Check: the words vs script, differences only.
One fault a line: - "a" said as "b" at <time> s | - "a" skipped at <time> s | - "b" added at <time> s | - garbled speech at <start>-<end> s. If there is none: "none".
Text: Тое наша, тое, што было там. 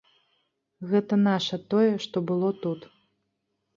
- "Тое" said as "Гэта" at 0.9 s
- "там" said as "тут" at 2.6 s